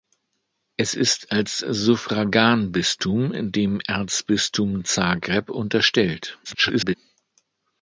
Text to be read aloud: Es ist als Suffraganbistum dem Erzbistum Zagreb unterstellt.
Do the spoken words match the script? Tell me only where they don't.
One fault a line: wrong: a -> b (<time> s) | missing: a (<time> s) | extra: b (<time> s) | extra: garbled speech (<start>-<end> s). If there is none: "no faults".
extra: garbled speech (6.4-6.9 s)